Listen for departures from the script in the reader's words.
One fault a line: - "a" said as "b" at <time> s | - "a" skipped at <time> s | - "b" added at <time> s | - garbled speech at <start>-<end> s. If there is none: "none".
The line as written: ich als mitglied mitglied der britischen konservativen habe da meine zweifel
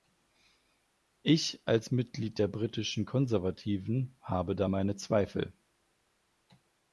- "mitglied" skipped at 2.4 s